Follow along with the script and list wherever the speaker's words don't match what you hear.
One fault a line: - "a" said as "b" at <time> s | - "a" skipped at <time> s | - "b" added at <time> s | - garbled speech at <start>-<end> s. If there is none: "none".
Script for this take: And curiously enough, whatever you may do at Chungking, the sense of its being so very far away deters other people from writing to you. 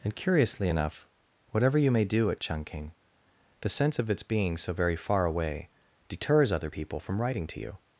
none